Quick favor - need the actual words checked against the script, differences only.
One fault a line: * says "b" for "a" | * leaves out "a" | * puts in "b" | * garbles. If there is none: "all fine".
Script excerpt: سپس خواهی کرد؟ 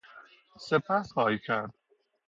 all fine